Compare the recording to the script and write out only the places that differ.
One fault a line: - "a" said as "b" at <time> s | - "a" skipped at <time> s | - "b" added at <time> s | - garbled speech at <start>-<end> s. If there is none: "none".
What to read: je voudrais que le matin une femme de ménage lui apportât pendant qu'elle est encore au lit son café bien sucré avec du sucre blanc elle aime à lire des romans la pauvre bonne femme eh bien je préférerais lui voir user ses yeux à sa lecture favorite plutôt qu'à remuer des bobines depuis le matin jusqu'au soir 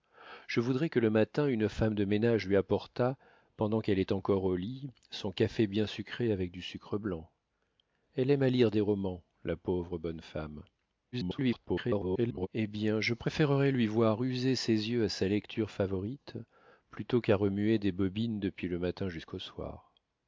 - garbled speech at 11.1-12.5 s